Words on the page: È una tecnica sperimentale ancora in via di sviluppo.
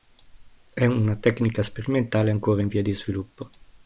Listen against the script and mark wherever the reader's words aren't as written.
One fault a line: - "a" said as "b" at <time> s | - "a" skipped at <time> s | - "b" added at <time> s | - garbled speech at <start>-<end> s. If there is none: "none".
none